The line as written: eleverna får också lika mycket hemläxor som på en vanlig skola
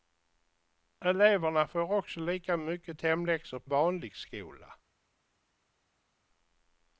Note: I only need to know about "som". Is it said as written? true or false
false